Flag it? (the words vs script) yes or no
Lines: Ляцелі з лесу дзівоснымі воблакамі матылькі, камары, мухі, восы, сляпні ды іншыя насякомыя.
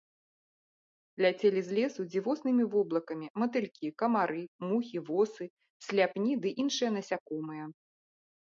no